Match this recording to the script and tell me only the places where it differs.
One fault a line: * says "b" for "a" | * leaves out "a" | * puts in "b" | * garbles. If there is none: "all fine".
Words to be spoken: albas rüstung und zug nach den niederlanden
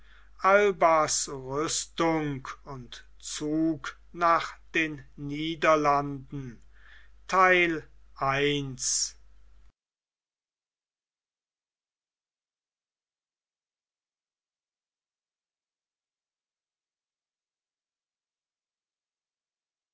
all fine